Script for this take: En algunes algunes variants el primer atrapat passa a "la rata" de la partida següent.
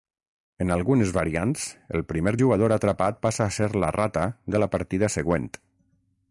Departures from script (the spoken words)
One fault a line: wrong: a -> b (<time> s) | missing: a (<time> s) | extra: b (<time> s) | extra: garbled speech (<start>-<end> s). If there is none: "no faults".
missing: algunes (1.1 s)
extra: jugador (2.4 s)
extra: ser (3.6 s)